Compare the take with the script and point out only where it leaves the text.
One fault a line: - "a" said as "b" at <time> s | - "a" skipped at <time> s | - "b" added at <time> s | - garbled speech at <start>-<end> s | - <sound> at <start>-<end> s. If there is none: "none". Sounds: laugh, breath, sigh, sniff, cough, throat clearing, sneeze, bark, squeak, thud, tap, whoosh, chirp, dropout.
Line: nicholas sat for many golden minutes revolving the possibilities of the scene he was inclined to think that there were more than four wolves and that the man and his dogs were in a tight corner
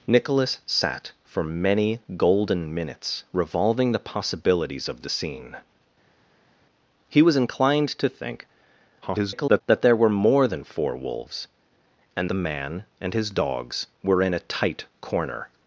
- garbled speech at 9.0-9.6 s
- "that" skipped at 12.3 s